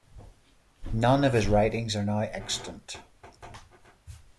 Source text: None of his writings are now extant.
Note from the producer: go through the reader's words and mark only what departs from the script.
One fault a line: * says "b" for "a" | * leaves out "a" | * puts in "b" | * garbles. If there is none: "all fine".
all fine